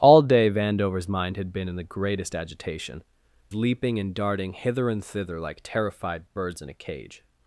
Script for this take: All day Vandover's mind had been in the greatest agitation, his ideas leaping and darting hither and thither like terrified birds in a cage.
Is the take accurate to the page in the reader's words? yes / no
no